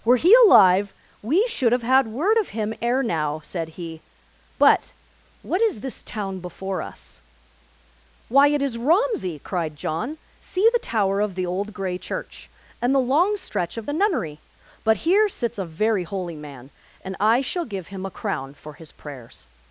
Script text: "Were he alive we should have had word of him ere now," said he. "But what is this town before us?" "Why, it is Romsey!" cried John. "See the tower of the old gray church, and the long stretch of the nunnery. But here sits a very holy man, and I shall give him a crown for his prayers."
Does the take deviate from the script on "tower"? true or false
false